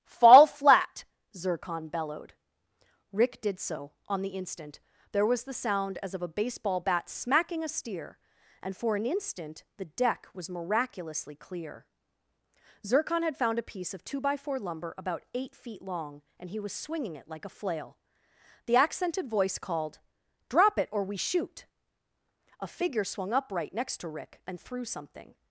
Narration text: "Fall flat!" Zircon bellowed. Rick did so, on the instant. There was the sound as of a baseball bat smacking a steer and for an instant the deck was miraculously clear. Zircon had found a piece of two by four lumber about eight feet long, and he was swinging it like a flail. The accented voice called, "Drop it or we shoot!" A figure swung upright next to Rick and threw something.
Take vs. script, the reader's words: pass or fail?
pass